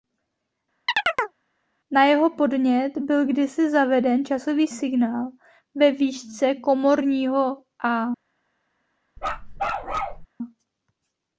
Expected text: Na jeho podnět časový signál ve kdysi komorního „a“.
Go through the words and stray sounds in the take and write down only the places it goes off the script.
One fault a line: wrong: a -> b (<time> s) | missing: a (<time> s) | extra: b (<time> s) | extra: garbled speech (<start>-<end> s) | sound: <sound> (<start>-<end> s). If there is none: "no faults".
sound: chirp (0.9-1.4 s)
extra: byl kdysi zaveden (3.0 s)
wrong: kdysi -> výšce (5.9 s)
sound: bark (9.2-10.3 s)